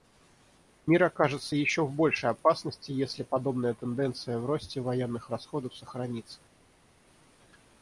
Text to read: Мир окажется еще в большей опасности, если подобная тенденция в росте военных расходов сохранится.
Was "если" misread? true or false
false